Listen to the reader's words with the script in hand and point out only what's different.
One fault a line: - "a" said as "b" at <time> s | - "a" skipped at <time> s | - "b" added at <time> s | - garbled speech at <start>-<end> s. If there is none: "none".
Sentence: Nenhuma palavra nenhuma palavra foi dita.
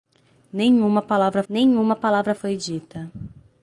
none